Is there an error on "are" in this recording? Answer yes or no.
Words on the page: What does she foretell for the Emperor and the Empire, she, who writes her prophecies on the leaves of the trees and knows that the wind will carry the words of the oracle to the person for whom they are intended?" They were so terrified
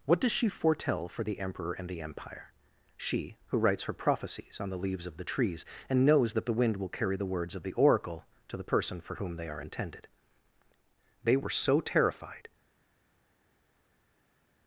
no